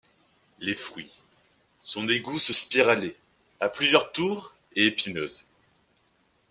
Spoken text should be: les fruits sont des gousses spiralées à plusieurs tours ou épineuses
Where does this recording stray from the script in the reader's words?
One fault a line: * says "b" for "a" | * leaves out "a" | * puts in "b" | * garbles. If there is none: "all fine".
* says "et" for "ou"